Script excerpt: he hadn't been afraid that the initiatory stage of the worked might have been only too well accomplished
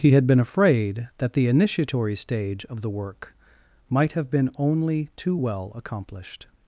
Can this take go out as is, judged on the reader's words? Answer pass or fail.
fail